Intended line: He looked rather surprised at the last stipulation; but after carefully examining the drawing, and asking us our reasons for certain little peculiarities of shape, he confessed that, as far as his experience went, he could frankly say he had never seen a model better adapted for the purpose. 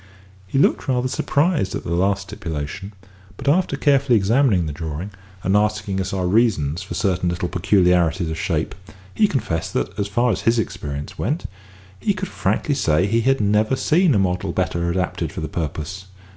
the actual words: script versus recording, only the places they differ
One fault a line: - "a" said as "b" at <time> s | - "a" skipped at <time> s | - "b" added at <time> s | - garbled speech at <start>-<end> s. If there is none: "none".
none